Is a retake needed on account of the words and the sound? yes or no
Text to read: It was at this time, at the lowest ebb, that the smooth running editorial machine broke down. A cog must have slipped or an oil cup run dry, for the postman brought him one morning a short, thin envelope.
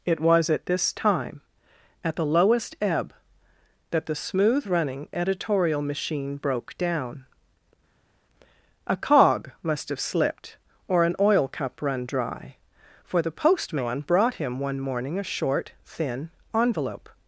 no